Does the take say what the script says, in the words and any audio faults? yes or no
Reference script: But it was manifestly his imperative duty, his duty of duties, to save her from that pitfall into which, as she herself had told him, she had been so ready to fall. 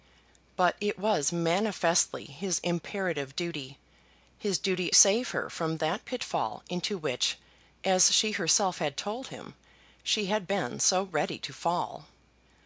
no